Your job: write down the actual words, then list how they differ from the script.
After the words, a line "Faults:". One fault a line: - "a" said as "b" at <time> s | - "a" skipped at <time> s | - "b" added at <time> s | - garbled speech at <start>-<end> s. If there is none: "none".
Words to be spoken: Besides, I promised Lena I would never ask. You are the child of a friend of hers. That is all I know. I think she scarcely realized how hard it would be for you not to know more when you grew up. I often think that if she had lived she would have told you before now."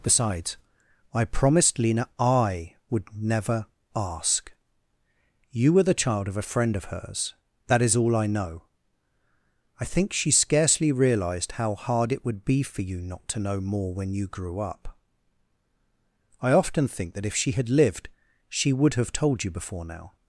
Besides, I promised Lena I would never ask. You were the child of a friend of hers. That is all I know. I think she scarcely realized how hard it would be for you not to know more when you grew up. I often think that if she had lived she would have told you before now."
Faults:
- "are" said as "were" at 5.7 s